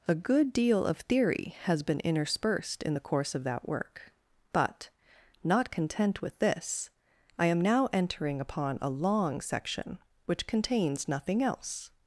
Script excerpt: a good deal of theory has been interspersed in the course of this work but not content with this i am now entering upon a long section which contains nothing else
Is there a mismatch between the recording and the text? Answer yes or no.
yes